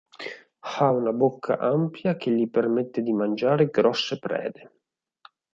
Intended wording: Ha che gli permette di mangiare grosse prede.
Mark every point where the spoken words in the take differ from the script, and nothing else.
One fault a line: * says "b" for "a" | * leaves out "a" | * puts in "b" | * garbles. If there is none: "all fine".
* puts in "una bocca ampia"